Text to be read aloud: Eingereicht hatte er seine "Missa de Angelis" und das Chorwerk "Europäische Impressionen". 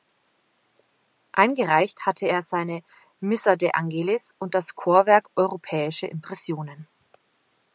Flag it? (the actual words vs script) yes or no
no